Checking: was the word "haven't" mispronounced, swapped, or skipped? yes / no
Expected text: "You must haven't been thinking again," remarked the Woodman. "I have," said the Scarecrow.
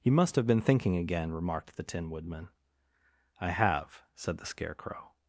yes